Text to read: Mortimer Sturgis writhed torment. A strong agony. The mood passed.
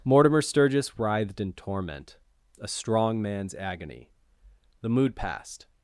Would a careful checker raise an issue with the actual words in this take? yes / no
yes